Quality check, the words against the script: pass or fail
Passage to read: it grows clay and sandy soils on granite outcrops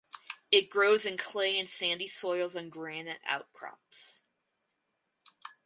fail